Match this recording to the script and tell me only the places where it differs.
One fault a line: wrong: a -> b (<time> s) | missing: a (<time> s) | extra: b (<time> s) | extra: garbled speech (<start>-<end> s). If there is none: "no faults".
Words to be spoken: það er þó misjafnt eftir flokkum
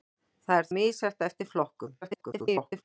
missing: þó (0.7 s)
extra: garbled speech (2.0-2.8 s)